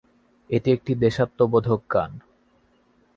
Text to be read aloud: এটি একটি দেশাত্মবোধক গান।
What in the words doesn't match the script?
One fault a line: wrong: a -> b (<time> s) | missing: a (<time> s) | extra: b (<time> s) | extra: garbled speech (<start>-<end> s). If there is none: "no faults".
no faults